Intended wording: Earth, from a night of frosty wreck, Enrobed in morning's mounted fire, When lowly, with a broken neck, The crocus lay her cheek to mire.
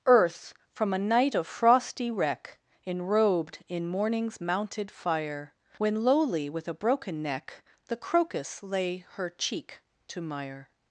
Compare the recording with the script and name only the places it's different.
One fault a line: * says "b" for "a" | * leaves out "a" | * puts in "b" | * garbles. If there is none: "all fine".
all fine